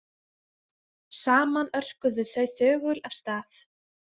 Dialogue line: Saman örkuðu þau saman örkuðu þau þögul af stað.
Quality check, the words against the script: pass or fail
fail